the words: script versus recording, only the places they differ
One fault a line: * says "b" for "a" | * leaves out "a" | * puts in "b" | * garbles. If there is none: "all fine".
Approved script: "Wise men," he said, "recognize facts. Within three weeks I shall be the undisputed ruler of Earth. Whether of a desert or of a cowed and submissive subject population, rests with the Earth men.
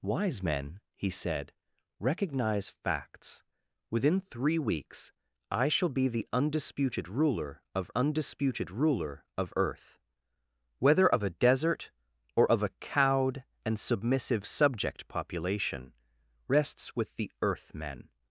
* puts in "undisputed ruler of"